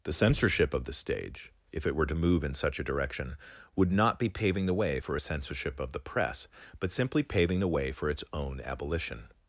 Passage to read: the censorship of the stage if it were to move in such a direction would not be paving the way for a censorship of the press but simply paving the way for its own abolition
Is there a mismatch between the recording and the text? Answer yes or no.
no